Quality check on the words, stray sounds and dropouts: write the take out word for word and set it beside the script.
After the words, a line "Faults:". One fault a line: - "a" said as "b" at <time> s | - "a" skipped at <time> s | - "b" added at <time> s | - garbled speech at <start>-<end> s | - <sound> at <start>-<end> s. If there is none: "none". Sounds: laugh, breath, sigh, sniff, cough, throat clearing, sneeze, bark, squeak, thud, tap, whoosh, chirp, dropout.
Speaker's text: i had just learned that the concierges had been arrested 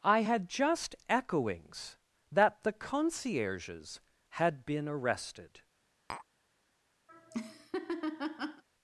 i had just echoings that the concierges had been arrested
Faults:
- "learned" said as "echoings" at 1.1 s
- tap at 6.1-6.3 s
- laugh at 7.1-8.6 s